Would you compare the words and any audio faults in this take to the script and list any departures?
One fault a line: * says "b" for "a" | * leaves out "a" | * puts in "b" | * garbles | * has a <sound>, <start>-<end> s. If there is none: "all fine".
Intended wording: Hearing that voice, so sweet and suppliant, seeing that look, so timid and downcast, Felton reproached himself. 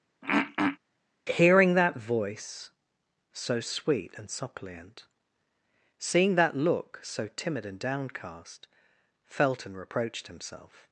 * has a throat clearing, 0.2-0.8 s